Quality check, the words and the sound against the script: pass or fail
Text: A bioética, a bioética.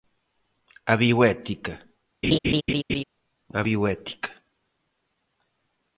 fail